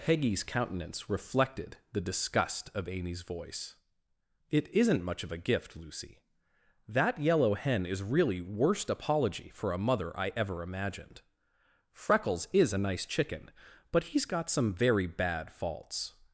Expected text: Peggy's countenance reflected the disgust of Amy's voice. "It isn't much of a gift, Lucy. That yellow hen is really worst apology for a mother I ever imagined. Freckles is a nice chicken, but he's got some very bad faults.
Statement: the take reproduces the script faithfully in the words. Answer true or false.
true